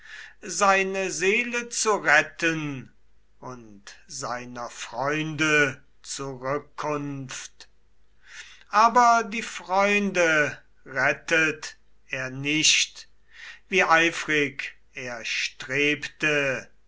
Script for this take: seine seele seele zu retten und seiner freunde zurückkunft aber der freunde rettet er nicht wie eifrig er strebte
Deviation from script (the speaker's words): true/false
true